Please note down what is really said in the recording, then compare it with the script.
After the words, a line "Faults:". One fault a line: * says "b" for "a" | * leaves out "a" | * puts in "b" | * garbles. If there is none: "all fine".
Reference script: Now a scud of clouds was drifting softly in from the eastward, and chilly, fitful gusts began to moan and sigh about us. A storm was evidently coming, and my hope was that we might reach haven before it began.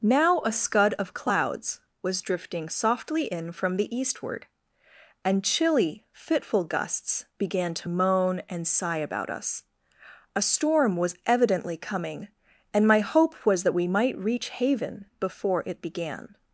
Now a scud of clouds was drifting softly in from the eastward, and chilly, fitful gusts began to moan and sigh about us. A storm was evidently coming, and my hope was that we might reach haven before it began.
Faults:
all fine